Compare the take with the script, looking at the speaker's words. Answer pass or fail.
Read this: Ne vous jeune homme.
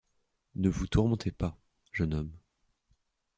fail